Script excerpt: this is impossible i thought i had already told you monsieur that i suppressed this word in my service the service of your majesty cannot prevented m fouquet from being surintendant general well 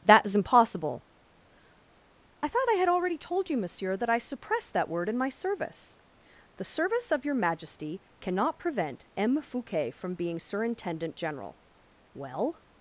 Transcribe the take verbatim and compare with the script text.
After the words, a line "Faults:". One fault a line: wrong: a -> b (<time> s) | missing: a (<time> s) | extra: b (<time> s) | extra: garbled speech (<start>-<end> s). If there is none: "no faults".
that is impossible i thought i had already told you monsieur that i suppressed that word in my service the service of your majesty cannot prevent m fouquet from being surintendant general well
Faults:
wrong: this -> that (0.0 s)
wrong: this -> that (4.7 s)
wrong: prevented -> prevent (8.6 s)